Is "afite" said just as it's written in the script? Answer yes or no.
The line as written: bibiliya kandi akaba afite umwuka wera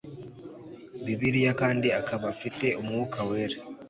yes